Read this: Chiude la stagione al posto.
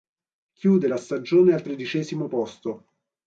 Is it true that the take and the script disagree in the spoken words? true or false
true